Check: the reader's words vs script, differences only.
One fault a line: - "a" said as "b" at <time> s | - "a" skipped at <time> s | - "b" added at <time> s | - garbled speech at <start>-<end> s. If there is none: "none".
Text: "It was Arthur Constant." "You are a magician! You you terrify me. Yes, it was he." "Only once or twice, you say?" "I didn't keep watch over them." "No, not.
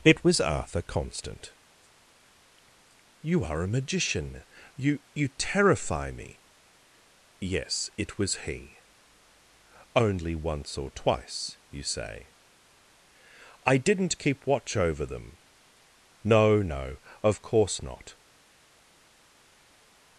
- "no of course" added at 16.6 s